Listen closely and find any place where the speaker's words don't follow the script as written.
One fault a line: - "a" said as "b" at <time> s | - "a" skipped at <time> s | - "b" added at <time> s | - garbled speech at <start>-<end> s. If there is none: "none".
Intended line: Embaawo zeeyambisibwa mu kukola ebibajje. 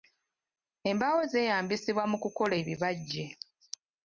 none